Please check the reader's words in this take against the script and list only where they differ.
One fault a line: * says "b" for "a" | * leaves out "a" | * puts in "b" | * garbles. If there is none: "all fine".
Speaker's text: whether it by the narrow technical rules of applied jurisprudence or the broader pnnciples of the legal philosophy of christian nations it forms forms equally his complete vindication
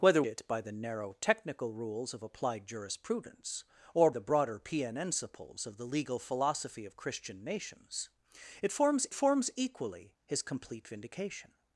all fine